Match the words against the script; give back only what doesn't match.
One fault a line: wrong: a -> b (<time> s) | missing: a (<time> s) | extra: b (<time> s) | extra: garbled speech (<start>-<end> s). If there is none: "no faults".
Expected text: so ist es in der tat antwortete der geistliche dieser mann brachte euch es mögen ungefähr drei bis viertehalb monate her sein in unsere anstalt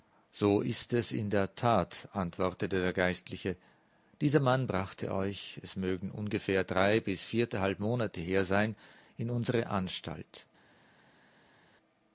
no faults